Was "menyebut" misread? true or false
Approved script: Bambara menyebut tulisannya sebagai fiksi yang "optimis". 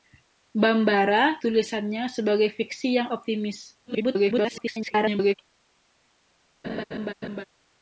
true